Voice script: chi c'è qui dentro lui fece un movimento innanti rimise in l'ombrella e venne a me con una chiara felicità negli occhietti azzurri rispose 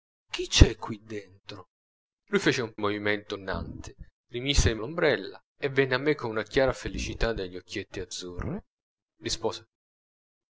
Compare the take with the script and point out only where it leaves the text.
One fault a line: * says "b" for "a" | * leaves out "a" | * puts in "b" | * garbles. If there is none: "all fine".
all fine